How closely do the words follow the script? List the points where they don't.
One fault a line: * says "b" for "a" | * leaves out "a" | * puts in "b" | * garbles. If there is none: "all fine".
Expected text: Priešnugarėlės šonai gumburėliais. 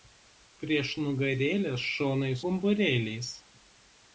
all fine